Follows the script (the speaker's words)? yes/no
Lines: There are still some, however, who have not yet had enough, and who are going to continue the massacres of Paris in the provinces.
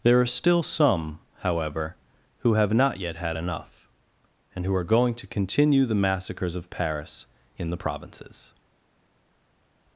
yes